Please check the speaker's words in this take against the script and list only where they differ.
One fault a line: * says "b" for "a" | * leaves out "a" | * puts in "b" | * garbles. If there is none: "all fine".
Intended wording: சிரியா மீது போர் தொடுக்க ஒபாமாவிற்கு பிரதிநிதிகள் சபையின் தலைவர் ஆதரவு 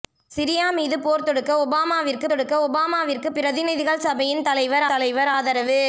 * puts in "தொடுக்க ஒபாமாவிற்கு"
* puts in "தலைவர்"